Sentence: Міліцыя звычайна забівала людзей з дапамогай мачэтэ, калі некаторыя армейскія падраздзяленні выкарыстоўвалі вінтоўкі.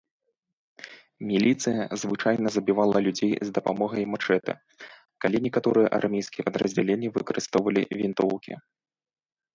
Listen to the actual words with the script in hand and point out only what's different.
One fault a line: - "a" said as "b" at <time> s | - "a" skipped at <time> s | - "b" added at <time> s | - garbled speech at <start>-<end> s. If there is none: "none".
none